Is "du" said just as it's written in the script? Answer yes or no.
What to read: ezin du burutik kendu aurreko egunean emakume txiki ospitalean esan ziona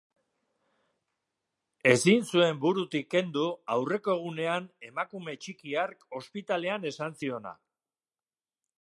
no